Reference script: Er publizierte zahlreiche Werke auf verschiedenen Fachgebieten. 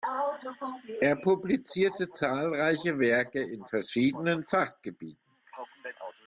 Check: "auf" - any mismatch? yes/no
yes